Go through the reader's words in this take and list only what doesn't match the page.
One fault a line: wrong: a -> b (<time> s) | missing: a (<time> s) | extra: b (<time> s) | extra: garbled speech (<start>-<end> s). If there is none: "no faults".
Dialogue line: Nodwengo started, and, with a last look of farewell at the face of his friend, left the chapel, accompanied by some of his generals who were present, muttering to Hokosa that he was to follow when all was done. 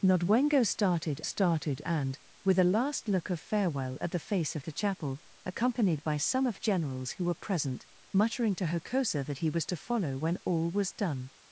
extra: started (1.2 s)
missing: his friend left (4.6 s)
missing: his (6.6 s)